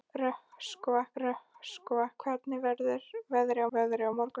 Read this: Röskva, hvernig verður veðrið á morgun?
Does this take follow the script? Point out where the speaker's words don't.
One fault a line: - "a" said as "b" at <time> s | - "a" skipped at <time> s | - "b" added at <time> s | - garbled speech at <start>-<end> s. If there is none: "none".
- "röskva" added at 1.2 s
- "veðrið" added at 3.8 s